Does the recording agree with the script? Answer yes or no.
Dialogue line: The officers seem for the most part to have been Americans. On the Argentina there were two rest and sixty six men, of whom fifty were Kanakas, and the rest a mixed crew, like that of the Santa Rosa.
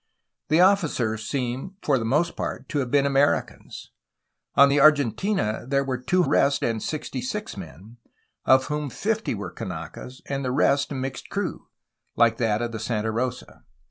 yes